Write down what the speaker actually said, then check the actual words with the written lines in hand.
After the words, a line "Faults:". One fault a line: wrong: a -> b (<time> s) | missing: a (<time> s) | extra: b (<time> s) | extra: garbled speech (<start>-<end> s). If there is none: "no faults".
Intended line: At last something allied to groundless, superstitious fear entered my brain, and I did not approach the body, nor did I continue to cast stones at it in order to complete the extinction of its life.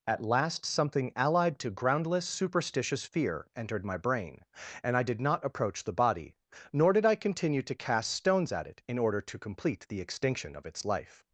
At last something allied to groundless, superstitious fear entered my brain, and I did not approach the body, nor did I continue to cast stones at it in order to complete the extinction of its life.
Faults:
no faults